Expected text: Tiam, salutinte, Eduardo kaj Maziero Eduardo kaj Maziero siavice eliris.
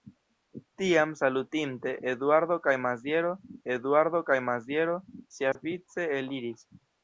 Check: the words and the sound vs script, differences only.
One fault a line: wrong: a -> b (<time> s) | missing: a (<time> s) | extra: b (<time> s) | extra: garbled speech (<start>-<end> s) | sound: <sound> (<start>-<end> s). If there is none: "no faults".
sound: dropout (5.5-5.6 s)